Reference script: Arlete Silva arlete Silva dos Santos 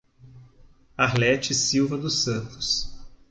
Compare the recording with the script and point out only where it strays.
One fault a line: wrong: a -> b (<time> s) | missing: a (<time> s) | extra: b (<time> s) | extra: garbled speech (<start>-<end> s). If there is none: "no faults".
missing: arlete Silva (1.9 s)